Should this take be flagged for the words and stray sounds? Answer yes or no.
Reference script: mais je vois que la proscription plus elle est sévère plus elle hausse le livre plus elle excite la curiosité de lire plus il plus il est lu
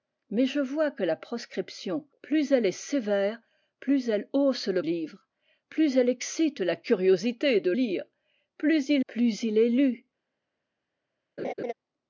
yes